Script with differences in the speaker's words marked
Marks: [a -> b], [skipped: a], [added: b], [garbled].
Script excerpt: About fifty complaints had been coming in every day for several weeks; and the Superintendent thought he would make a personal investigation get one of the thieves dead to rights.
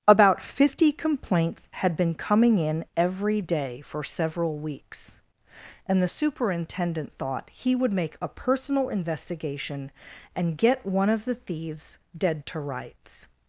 About fifty complaints had been coming in every day for several weeks; and the Superintendent thought he would make a personal investigation [added: and] get one of the thieves dead to rights.